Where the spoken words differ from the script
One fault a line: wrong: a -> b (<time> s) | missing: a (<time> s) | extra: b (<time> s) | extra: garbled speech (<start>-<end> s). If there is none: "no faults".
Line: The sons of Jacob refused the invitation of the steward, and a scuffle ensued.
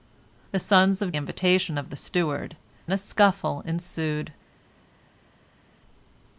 missing: Jacob refused the (1.1 s)
missing: and (2.6 s)